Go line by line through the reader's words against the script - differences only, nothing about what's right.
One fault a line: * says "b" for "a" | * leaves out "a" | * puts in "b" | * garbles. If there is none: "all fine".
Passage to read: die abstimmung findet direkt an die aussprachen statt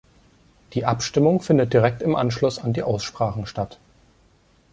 * puts in "im anschluss"